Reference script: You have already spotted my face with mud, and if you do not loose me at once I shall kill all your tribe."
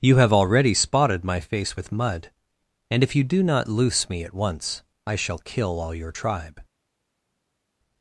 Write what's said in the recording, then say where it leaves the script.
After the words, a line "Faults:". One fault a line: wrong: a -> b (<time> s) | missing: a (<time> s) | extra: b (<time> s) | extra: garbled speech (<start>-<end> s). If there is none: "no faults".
You have already spotted my face with mud, and if you do not loose me at once I shall kill all your tribe."
Faults:
no faults